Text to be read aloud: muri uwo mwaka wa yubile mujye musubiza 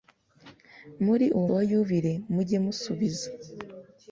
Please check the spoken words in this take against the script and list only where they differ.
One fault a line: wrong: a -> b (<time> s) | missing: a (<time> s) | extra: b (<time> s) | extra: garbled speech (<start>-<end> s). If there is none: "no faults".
missing: mwaka (1.5 s)